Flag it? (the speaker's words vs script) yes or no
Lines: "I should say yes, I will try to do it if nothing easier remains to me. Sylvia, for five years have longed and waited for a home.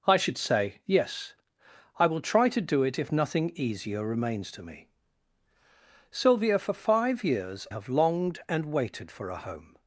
no